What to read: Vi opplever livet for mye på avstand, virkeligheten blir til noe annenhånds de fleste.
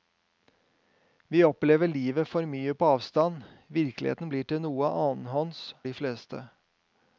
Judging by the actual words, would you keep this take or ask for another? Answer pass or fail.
pass